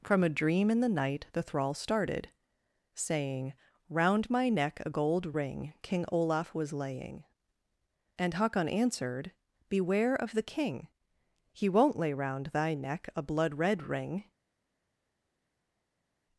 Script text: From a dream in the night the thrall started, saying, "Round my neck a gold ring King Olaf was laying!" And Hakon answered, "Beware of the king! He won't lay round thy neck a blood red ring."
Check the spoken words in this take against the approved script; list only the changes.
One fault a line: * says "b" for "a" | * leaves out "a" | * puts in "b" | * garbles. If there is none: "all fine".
all fine